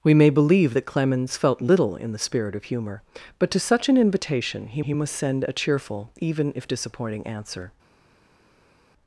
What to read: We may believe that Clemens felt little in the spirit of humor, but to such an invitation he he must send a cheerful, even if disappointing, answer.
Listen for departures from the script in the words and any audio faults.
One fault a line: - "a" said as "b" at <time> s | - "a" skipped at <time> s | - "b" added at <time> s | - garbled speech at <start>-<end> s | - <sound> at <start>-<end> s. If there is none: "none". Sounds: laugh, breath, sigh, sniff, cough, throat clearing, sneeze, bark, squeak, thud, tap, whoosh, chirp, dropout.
none